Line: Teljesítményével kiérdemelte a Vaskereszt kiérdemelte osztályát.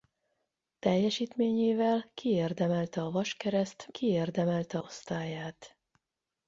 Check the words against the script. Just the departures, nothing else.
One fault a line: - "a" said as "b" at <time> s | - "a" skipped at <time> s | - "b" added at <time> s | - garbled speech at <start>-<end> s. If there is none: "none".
none